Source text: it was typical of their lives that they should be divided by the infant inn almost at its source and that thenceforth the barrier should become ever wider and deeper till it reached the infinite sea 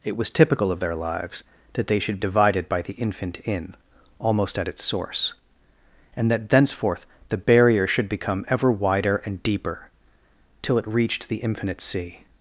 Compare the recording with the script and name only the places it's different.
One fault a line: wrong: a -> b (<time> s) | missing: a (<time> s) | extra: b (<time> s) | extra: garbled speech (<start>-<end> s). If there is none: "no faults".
missing: be (2.2 s)